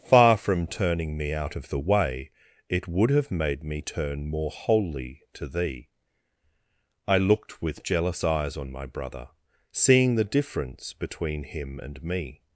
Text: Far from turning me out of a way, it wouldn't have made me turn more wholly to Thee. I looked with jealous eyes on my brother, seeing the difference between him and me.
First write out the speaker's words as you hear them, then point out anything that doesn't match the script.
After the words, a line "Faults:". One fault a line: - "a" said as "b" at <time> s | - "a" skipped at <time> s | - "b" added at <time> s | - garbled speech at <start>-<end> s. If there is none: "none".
Far from turning me out of the way, it would have made me turn more wholly to Thee. I looked with jealous eyes on my brother, seeing the difference between him and me.
Faults:
- "a" said as "the" at 1.7 s
- "wouldn't" said as "would" at 2.9 s